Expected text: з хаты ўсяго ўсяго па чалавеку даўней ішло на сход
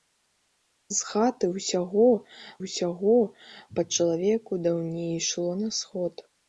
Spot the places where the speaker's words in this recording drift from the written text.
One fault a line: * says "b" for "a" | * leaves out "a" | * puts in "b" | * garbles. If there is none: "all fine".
all fine